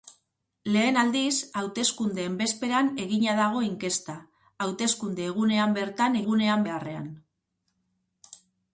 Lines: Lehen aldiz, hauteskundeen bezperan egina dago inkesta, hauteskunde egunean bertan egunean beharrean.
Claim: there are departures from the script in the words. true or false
false